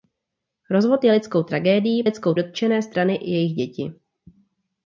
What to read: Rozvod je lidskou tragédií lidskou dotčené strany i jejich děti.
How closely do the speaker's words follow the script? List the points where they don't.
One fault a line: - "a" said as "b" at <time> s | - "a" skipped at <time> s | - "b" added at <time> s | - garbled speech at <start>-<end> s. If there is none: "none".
none